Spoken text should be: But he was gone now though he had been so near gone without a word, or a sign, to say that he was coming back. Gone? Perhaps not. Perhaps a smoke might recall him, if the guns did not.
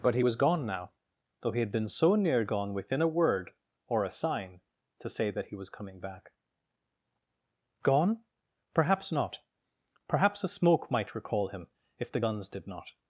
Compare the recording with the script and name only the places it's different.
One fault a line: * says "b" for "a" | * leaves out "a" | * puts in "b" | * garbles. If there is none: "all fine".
* says "within" for "without"